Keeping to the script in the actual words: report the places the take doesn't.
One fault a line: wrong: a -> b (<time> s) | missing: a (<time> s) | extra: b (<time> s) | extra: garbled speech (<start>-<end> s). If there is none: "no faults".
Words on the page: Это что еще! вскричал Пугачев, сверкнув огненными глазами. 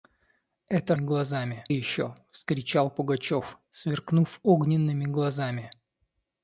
wrong: что -> глазами (1.0 s)